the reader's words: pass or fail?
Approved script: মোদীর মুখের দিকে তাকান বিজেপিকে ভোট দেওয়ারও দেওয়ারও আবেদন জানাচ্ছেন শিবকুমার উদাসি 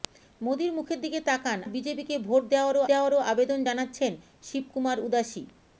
pass